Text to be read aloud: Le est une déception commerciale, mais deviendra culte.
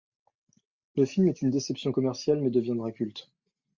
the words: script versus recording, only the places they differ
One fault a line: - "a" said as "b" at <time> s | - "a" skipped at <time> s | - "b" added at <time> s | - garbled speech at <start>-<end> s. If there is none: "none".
- "film" added at 1.1 s